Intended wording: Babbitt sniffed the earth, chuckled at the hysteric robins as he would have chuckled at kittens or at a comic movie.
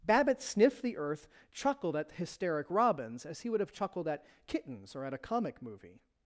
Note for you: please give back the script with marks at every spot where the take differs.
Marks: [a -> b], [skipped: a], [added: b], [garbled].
Babbitt sniffed the earth, chuckled at [skipped: the] hysteric robins as he would have chuckled at kittens or at a comic movie.